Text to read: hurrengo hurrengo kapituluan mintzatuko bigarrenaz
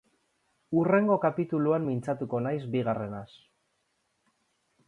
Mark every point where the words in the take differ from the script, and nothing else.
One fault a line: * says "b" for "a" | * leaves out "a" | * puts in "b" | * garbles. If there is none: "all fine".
* leaves out "hurrengo"
* puts in "naiz"